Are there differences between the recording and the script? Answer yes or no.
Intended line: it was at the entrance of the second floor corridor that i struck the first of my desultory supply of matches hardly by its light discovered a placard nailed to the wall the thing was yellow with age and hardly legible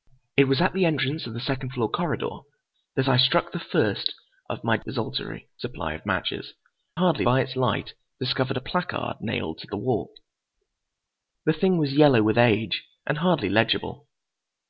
no